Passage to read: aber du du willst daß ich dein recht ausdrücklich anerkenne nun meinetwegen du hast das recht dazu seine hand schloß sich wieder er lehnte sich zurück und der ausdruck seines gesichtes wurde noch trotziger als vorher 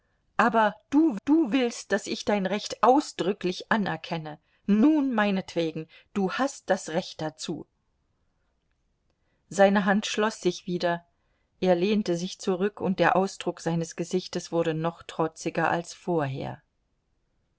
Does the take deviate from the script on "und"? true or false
false